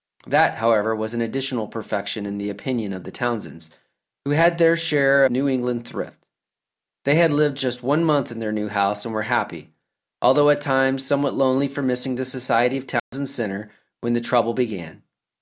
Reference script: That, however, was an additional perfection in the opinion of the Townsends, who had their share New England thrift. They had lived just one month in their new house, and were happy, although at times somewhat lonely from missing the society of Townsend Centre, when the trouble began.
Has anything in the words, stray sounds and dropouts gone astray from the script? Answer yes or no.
yes